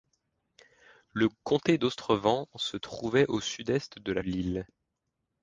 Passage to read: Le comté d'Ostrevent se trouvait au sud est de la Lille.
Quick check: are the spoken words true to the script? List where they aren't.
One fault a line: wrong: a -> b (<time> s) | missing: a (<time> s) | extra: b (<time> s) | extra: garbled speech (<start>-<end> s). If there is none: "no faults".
no faults